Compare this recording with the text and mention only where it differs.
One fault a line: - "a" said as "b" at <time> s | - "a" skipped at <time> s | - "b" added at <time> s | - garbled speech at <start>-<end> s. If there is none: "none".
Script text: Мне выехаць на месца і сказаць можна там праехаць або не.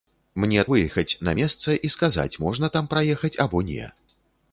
none